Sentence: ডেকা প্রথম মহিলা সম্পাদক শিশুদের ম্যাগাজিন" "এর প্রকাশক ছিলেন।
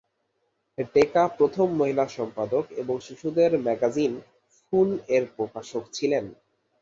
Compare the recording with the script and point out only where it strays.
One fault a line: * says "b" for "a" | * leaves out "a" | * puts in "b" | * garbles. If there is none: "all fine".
* puts in "এবং"
* puts in "ফুল"